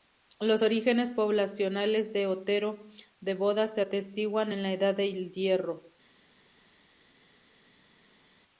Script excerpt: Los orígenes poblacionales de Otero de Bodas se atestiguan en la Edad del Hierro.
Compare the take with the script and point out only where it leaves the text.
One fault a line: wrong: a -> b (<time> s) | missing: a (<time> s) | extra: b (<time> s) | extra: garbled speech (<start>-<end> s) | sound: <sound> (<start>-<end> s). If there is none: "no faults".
no faults